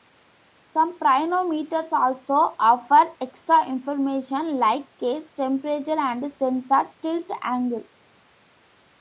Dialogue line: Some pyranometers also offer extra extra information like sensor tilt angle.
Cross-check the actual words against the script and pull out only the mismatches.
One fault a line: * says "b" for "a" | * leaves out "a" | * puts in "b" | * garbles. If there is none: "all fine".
* leaves out "extra"
* puts in "case temperature and"